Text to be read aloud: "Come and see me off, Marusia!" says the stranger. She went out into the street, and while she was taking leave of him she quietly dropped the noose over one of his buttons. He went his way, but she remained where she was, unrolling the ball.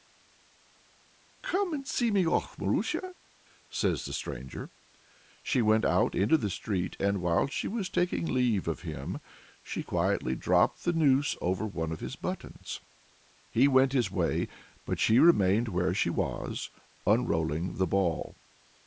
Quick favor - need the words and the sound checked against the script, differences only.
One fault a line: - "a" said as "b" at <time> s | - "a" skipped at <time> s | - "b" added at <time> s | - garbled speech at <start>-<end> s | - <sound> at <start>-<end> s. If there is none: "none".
none